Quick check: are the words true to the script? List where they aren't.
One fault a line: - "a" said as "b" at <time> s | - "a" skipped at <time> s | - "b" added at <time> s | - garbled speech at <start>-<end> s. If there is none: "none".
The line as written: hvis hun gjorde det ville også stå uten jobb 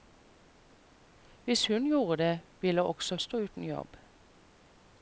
none